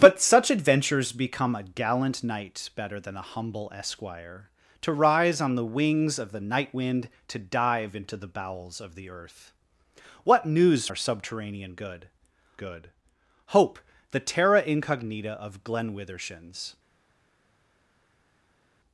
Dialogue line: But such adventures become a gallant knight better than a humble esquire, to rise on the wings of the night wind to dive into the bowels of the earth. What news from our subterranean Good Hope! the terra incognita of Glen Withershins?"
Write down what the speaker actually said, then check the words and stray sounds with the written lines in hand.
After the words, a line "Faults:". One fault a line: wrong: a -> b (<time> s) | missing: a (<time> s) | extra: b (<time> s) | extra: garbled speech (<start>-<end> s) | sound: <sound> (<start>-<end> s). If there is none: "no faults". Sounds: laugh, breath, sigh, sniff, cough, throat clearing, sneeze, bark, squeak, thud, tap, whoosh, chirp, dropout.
But such adventures become a gallant knight better than a humble esquire, to rise on the wings of the night wind to dive into the bowels of the earth. What news our subterranean Good Good Hope! the terra incognita of Glen Withershins?"
Faults:
missing: from (10.9 s)
extra: Good (12.5 s)